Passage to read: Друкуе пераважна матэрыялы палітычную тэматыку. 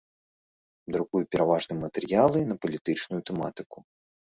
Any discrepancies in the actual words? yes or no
yes